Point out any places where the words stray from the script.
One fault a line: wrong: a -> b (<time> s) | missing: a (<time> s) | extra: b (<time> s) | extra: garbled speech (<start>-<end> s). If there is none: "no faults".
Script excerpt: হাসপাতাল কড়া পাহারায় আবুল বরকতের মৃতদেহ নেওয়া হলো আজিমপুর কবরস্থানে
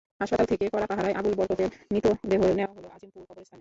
extra: থেকে (0.5 s)